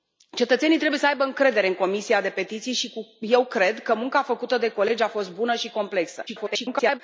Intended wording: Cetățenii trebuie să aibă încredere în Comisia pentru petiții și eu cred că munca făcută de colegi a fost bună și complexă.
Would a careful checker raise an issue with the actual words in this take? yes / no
yes